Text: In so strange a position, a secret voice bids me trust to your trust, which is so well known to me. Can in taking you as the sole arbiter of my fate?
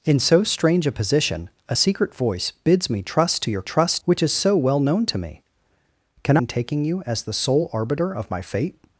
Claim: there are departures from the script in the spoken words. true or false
false